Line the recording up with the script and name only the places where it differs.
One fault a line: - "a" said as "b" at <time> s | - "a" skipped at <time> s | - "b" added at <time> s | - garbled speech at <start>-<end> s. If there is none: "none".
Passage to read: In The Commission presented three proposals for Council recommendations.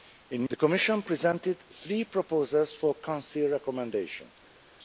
none